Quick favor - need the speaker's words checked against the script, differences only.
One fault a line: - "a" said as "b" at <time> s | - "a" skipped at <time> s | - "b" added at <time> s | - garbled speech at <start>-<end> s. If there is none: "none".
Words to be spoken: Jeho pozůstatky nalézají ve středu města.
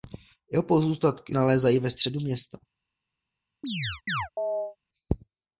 none